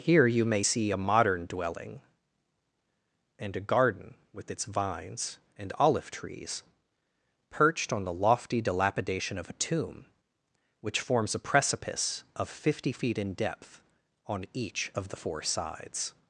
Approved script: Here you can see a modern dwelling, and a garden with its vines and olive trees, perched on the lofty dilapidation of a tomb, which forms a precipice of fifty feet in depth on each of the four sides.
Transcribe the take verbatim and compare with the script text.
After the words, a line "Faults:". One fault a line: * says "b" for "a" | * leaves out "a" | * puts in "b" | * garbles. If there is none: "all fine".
Here you may see a modern dwelling, and a garden with its vines and olive trees, perched on the lofty dilapidation of a tomb, which forms a precipice of fifty feet in depth on each of the four sides.
Faults:
* says "may" for "can"